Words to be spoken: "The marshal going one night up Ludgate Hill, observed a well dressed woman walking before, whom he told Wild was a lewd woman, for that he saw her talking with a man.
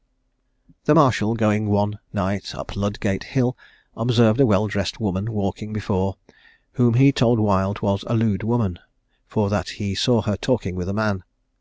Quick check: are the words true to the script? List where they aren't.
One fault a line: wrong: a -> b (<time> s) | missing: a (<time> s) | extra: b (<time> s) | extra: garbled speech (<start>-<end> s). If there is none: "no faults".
no faults